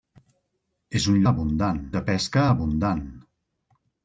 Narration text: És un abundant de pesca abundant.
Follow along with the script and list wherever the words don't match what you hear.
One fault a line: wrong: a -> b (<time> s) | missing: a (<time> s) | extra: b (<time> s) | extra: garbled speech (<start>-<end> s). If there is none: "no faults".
no faults